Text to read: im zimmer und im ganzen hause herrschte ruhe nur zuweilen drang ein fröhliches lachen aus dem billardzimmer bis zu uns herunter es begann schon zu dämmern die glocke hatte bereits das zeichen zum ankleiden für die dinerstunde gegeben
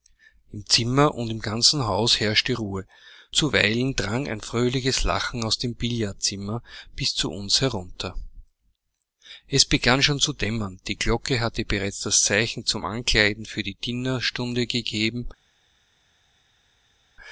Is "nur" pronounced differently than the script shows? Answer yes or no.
yes